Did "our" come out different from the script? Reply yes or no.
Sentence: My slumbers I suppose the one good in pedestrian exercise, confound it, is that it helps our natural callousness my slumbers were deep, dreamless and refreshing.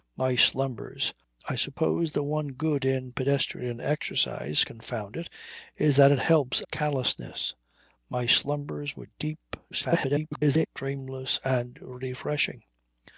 yes